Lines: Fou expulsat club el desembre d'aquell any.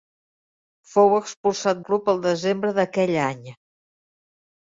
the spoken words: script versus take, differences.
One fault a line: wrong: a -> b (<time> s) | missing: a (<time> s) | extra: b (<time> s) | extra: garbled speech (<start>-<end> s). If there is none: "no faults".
no faults